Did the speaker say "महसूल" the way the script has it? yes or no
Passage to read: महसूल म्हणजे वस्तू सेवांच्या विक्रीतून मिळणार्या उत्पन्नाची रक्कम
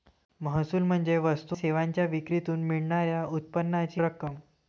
yes